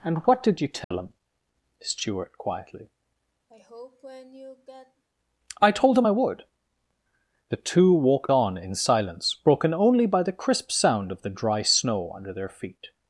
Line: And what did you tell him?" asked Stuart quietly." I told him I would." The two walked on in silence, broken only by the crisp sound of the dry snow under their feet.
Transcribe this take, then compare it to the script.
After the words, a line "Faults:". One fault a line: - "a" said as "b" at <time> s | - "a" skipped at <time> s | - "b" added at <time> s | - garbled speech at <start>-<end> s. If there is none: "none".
And what did you tell him?" Stuart quietly." I told him I would." The two walked on in silence, broken only by the crisp sound of the dry snow under their feet.
Faults:
- "asked" skipped at 1.1 s